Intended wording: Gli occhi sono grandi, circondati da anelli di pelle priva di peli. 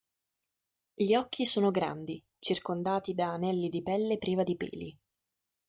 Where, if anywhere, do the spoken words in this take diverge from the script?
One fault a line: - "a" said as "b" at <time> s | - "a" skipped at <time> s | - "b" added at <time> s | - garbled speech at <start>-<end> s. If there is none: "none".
none